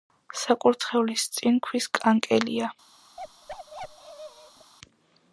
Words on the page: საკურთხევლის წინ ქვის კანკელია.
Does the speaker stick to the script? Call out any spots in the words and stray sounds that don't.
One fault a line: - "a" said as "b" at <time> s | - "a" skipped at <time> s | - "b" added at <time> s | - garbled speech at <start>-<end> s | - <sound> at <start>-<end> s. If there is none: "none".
- bark at 3.2-4.7 s